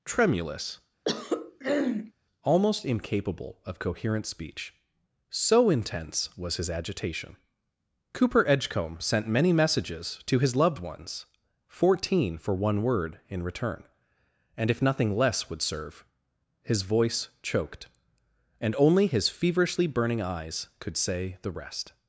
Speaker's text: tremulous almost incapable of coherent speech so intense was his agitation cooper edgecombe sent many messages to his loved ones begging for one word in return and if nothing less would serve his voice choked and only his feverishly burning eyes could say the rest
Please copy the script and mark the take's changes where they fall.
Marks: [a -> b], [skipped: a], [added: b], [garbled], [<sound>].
tremulous [throat clearing] almost incapable of coherent speech so intense was his agitation cooper edgecombe sent many messages to his loved ones [begging -> fourteen] for one word in return and if nothing less would serve his voice choked and only his feverishly burning eyes could say the rest